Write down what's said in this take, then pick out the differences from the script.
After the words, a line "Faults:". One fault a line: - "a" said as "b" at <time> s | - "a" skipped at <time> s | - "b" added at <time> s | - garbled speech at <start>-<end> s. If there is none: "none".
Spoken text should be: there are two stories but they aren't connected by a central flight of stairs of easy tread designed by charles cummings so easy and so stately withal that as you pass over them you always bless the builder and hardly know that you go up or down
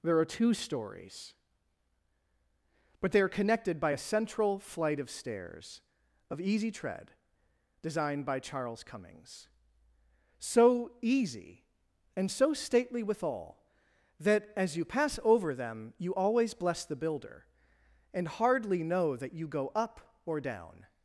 there are two stories but they are connected by a central flight of stairs of easy tread designed by charles cummings so easy and so stately withal that as you pass over them you always bless the builder and hardly know that you go up or down
Faults:
- "aren't" said as "are" at 3.2 s